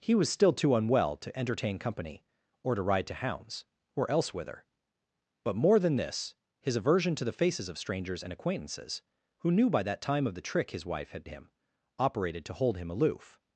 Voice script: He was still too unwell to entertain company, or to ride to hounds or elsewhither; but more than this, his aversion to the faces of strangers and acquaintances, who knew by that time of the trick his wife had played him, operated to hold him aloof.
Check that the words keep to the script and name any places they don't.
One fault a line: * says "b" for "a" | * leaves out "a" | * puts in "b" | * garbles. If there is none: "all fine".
* leaves out "played"